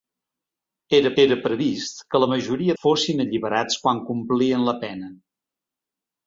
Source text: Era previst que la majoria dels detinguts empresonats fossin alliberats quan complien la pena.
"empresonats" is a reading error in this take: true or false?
true